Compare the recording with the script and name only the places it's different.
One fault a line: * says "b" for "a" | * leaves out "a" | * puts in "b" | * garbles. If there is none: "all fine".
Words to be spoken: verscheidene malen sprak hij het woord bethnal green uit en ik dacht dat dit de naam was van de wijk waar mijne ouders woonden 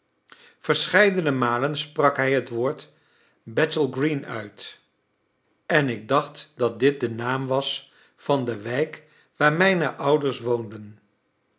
all fine